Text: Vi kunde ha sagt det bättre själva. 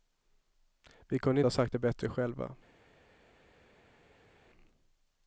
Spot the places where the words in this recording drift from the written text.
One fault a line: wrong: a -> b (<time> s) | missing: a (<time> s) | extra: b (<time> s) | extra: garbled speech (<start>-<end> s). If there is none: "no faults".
no faults